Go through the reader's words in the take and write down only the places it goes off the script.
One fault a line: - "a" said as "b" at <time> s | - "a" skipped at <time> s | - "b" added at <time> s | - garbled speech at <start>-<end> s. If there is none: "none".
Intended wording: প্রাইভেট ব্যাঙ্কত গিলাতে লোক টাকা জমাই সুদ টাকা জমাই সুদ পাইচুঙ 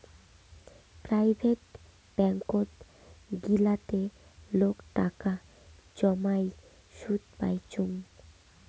- "টাকা জমাই সুদ" skipped at 7.2 s